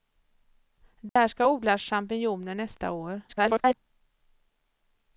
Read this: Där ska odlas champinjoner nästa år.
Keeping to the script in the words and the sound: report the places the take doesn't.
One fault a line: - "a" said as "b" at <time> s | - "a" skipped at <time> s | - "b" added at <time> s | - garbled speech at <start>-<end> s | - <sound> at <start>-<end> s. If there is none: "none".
- dropout at 1.1-1.2 s
- garbled speech at 3.3-3.7 s